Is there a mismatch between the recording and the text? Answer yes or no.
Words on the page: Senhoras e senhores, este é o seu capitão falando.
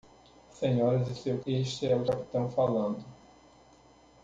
yes